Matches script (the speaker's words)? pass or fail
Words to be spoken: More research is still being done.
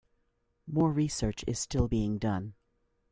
pass